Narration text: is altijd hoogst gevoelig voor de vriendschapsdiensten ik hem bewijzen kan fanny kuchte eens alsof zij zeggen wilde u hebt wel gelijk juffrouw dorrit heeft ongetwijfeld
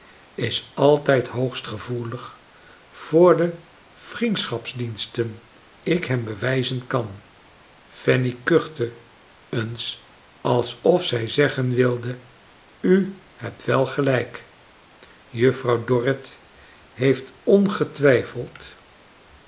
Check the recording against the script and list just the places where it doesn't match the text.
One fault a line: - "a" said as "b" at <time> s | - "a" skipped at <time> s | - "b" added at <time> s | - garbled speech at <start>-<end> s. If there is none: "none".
none